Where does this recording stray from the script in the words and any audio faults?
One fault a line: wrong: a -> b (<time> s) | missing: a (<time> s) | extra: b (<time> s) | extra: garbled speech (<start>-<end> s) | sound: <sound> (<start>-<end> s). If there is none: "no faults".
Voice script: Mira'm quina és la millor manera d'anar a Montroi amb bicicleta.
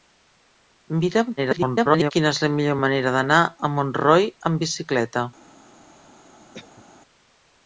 extra: garbled speech (1.4-2.1 s)
sound: cough (6.5-6.8 s)